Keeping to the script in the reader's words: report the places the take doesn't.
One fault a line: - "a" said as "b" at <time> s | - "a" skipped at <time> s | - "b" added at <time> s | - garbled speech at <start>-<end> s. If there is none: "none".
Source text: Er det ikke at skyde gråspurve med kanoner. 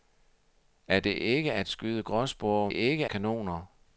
- "med" said as "ikke" at 2.7 s